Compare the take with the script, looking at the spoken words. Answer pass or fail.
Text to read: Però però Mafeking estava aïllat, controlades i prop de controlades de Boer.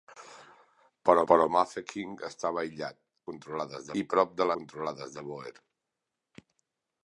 pass